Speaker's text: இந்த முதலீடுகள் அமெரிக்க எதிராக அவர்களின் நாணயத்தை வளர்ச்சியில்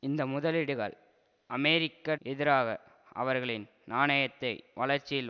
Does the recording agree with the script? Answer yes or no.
yes